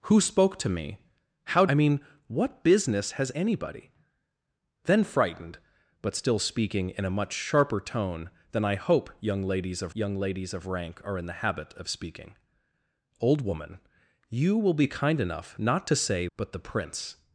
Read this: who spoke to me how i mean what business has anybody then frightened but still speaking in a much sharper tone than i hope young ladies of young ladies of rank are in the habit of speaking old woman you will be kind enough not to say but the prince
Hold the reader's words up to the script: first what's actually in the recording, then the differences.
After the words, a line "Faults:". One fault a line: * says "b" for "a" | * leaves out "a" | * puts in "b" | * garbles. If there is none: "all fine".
who spoke to me how i mean what business has anybody then frightened but still speaking in a much sharper tone than i hope young ladies of young ladies of rank are in the habit of speaking old woman you will be kind enough not to say but the prince
Faults:
all fine